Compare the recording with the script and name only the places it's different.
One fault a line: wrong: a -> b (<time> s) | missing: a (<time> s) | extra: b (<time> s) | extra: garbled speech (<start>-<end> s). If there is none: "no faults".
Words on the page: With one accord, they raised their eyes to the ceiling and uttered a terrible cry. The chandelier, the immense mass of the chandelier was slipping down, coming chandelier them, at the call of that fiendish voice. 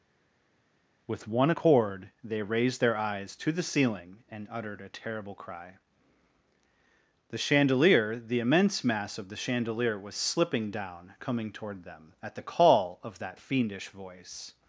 wrong: chandelier -> toward (11.5 s)